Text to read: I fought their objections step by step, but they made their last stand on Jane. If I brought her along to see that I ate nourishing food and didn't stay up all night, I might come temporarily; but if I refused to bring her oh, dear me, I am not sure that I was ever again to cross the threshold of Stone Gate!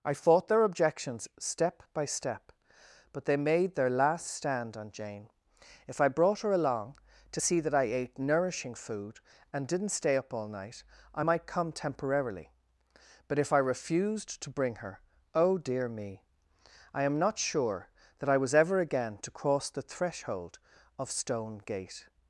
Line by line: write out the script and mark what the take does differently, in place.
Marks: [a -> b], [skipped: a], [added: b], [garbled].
I fought their objections step by step, but they made their last stand on Jane. If I brought her along to see that I ate nourishing food and didn't stay up all night, I might come temporarily; but if I refused to bring her oh, dear me, I am not sure that I was ever again to cross the threshold of Stone Gate!